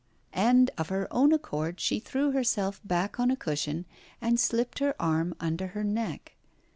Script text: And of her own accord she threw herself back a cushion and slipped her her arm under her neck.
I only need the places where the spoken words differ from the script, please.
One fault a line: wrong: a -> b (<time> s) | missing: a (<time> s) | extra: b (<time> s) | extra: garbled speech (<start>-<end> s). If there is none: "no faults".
extra: on (3.2 s)
missing: her (5.0 s)